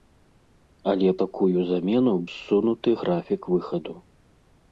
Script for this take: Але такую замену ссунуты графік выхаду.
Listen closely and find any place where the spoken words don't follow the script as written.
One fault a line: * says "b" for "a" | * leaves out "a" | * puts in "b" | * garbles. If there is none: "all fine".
all fine